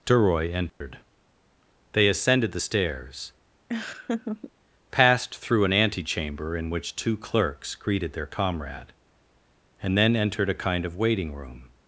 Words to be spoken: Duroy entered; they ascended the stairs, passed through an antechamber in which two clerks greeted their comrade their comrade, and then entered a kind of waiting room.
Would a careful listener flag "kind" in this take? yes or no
no